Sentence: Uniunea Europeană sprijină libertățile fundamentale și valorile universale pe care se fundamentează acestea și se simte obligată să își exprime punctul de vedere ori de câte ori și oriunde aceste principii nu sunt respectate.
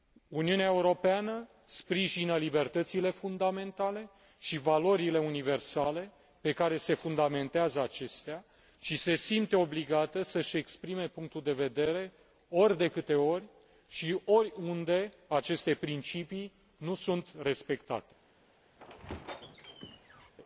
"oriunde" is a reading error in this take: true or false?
false